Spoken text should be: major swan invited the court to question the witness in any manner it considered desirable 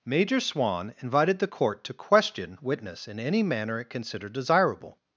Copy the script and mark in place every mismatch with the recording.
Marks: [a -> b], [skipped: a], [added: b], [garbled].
major swan invited the court to question [skipped: the] witness in any manner it considered desirable